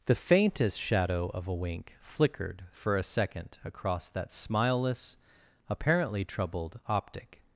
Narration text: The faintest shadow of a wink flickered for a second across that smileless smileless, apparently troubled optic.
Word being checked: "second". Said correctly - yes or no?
yes